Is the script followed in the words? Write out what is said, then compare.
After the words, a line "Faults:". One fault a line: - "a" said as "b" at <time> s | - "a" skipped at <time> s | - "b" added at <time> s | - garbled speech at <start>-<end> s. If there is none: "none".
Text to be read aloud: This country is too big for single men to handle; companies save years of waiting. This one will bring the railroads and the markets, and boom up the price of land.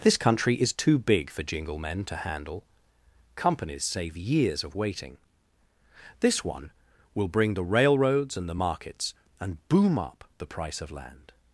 This country is too big for jingle men to handle; companies save years of waiting. This one will bring the railroads and the markets, and boom up the price of land.
Faults:
- "single" said as "jingle" at 1.4 s